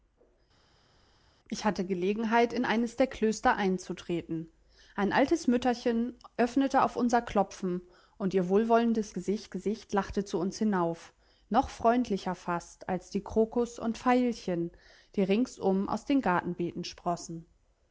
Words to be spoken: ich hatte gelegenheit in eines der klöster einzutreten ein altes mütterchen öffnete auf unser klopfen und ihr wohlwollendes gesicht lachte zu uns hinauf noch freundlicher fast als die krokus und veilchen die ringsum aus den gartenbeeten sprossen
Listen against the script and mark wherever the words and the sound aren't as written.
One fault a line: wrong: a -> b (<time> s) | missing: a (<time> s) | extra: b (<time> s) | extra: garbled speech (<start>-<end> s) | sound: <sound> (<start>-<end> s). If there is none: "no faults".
extra: gesicht (9.5 s)